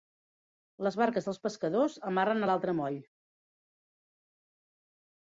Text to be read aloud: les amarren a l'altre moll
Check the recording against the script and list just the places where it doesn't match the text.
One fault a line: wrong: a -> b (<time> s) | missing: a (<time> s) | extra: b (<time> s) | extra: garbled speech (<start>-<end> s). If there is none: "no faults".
extra: barques dels pescadors (1.0 s)